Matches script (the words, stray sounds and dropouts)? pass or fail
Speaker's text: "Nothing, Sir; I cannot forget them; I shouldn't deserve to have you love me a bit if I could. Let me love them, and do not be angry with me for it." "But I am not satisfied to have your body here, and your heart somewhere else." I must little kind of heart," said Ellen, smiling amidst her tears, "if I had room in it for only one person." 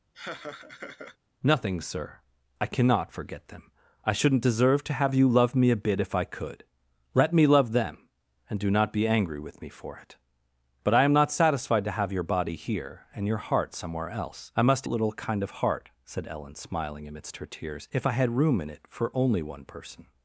fail